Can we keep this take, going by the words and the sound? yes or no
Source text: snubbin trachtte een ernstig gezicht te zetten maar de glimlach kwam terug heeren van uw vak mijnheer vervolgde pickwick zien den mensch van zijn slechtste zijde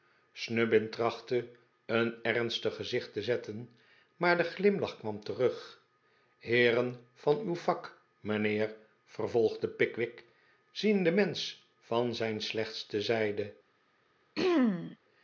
no